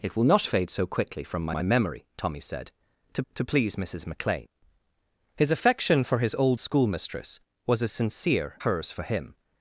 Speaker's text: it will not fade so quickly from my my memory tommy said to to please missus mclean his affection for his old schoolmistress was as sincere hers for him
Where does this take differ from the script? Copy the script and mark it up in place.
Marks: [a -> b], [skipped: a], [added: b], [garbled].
it will not fade so quickly from my my memory tommy said to to please missus mclean his affection for his old schoolmistress was as sincere hers for him